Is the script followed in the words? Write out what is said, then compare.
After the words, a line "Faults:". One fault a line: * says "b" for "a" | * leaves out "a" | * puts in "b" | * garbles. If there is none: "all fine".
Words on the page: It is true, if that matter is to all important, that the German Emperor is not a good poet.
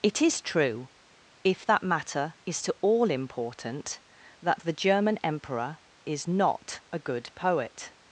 It is true, if that matter is to all important, that the German Emperor is not a good poet.
Faults:
all fine